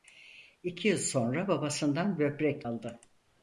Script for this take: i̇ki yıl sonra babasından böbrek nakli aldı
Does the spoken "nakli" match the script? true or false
false